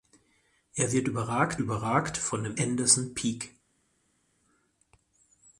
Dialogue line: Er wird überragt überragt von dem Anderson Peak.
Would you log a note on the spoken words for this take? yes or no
no